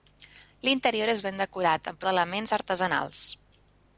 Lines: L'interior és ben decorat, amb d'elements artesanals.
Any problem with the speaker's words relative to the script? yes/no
no